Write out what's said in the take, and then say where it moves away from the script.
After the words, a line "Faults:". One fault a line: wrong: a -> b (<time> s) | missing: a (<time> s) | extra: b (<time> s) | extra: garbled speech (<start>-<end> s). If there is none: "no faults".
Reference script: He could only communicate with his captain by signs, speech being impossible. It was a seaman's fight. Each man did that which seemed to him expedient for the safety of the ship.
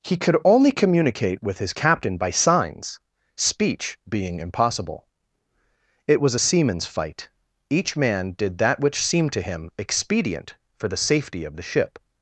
He could only communicate with his captain by signs, speech being impossible. It was a seaman's fight. Each man did that which seemed to him expedient for the safety of the ship.
Faults:
no faults